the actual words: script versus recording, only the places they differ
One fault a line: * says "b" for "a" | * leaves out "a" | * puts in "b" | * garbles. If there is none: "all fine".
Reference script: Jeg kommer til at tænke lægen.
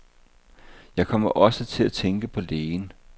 * puts in "også"
* puts in "på"